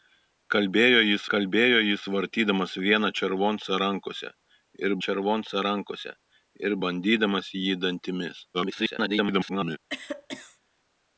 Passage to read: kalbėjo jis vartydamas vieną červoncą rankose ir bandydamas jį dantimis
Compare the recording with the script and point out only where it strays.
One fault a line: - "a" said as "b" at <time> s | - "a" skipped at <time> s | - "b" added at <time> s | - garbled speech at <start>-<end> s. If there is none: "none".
- "kalbėjo jis" added at 1.3 s
- "červoncą rankose ir" added at 5.1 s
- garbled speech at 8.5-9.8 s